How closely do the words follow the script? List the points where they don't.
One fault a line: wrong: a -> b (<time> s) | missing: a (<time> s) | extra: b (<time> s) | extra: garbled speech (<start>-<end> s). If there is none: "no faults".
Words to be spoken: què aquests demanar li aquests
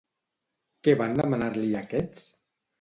wrong: aquests -> van (1.0 s)